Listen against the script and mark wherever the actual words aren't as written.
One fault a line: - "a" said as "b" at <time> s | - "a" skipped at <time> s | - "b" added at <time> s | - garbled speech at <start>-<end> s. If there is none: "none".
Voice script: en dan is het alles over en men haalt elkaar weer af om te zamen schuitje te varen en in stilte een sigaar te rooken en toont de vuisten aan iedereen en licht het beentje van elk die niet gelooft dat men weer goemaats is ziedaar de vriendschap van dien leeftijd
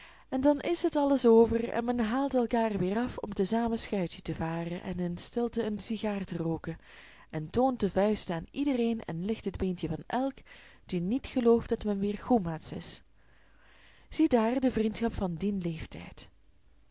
none